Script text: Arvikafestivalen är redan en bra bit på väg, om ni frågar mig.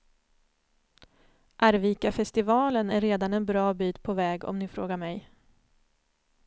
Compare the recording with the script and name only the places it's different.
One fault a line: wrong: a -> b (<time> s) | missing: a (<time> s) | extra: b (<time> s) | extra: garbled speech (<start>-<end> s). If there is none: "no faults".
no faults